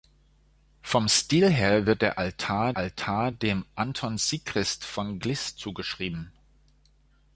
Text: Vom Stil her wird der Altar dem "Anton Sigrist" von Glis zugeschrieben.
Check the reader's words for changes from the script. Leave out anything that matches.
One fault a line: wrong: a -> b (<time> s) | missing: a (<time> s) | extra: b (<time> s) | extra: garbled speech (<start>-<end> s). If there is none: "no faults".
extra: Altar (2.8 s)